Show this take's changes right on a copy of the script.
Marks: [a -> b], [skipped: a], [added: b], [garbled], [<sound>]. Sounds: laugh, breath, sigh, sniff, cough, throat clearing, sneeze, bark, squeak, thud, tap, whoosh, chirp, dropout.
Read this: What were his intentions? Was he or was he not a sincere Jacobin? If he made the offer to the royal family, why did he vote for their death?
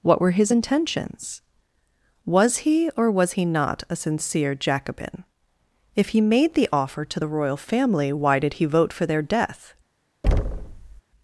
What were his intentions? Was he or was he not a sincere Jacobin? If he made the offer to the royal family, why did he vote for their death? [thud]